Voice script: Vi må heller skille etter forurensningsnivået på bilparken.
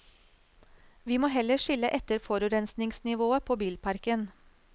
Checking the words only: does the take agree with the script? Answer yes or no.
yes